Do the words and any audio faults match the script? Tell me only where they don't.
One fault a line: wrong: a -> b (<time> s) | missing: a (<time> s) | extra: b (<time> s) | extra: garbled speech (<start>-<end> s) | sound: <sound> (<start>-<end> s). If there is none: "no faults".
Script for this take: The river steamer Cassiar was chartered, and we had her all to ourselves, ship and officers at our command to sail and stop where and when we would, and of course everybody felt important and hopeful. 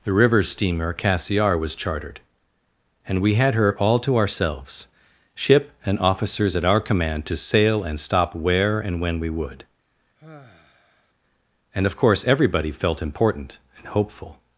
sound: sigh (10.2-11.1 s)